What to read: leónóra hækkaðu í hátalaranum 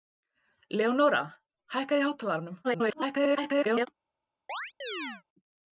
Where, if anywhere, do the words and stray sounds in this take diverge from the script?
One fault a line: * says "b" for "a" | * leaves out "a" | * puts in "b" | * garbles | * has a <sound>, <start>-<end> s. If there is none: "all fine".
* garbles
* has a chirp, 4.5-5.2 s